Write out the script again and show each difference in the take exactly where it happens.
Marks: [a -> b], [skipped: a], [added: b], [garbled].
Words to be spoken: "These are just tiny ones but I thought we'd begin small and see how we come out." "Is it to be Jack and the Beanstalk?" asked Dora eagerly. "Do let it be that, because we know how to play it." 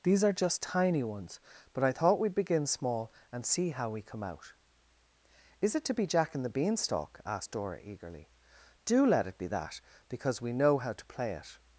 "These are just tiny ones but I thought we'd begin small and see how we come out." "Is it to be Jack and the Beanstalk?" asked Dora eagerly. "Do let it be that, because we know how to play it."